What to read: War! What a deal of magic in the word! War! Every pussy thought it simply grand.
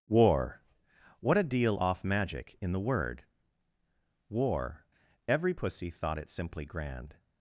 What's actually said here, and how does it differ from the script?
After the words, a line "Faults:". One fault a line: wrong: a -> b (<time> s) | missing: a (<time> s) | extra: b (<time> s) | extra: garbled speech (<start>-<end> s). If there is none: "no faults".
War! What a deal off magic in the word! War! Every pussy thought it simply grand.
Faults:
wrong: of -> off (1.8 s)